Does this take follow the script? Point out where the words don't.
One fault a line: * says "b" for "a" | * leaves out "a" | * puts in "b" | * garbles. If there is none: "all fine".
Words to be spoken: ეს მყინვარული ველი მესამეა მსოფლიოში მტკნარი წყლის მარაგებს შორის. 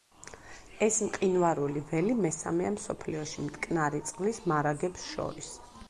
all fine